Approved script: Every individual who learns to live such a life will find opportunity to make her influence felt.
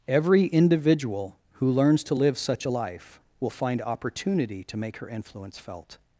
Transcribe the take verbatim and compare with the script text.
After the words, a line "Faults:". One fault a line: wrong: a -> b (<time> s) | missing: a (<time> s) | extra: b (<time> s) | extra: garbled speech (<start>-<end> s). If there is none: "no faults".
Every individual who learns to live such a life will find opportunity to make her influence felt.
Faults:
no faults